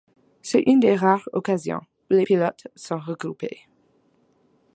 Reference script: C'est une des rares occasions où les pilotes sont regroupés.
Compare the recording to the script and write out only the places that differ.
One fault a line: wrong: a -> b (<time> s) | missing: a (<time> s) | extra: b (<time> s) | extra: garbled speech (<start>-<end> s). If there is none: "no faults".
no faults